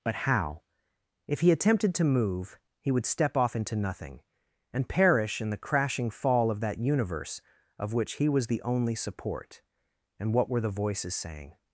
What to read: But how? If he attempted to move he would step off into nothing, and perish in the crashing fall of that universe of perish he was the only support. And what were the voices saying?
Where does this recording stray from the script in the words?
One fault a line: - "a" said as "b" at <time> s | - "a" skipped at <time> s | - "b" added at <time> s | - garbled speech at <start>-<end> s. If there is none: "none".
- "perish" said as "which" at 7.9 s